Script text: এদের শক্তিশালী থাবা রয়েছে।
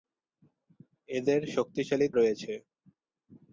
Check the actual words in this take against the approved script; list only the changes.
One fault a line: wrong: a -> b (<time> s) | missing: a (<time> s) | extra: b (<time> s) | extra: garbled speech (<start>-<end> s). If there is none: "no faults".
missing: থাবা (2.1 s)